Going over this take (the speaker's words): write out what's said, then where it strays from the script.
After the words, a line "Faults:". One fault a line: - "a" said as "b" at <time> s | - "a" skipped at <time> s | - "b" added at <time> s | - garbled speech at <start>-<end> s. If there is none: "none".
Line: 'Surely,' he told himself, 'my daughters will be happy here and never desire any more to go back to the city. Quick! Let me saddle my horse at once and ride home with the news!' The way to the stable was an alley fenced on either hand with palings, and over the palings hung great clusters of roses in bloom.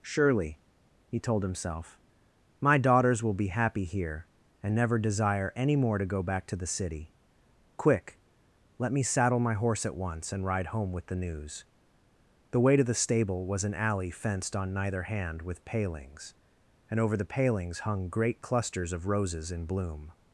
'Surely,' he told himself, 'my daughters will be happy here and never desire any more to go back to the city. Quick! Let me saddle my horse at once and ride home with the news!' The way to the stable was an alley fenced on neither hand with palings, and over the palings hung great clusters of roses in bloom.
Faults:
- "either" said as "neither" at 14.7 s